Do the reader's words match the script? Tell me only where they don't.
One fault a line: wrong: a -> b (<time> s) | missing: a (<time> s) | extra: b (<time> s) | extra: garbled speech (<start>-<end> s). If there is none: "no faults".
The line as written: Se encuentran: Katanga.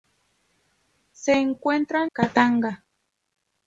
no faults